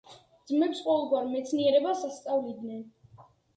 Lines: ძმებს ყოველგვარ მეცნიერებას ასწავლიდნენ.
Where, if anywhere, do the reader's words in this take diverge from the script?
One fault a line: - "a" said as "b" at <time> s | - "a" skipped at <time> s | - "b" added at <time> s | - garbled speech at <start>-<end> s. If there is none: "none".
none